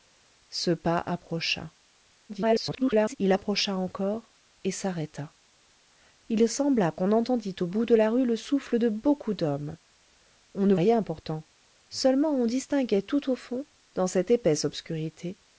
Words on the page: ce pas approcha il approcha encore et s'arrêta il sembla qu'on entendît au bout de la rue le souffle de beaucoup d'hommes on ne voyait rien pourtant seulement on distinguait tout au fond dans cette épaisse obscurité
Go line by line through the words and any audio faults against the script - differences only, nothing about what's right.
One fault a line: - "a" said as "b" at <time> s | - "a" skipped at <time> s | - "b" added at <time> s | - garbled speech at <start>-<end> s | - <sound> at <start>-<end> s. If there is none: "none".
- garbled speech at 2.3-3.2 s
- "voyait" skipped at 10.7 s